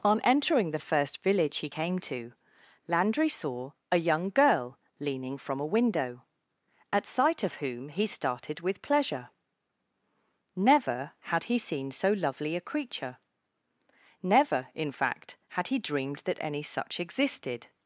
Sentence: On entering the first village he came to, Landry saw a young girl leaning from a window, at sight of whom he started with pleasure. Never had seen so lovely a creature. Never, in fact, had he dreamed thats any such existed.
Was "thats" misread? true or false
true